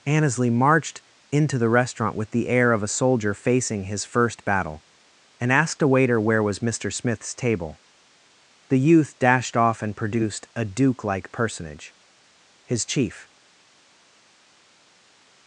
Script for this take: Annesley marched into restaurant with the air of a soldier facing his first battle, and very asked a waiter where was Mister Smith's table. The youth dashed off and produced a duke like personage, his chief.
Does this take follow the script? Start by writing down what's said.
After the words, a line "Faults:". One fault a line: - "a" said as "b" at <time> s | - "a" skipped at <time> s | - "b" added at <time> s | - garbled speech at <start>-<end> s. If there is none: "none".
Annesley marched into the restaurant with the air of a soldier facing his first battle, and asked a waiter where was Mister Smith's table. The youth dashed off and produced a duke like personage, his chief.
Faults:
- "the" added at 1.6 s
- "very" skipped at 5.5 s